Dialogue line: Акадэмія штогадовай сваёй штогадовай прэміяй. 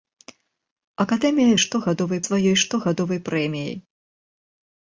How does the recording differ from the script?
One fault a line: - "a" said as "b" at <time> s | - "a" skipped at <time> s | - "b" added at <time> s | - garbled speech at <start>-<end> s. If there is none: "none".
none